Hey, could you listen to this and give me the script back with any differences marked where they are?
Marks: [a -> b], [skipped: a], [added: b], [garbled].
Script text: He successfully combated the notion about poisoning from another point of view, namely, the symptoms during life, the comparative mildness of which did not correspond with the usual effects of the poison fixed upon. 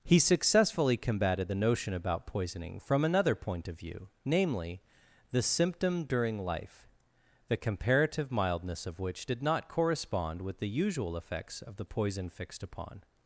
He successfully combated the notion about poisoning from another point of view, namely, the [symptoms -> symptom] during life, the comparative mildness of which did not correspond with the usual effects of the poison fixed upon.